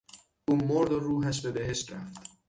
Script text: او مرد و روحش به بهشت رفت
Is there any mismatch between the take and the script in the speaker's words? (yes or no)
no